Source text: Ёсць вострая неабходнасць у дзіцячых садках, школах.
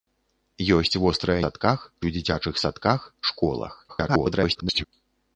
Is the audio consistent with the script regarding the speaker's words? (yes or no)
no